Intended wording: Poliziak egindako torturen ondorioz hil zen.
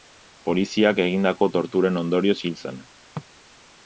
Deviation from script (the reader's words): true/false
false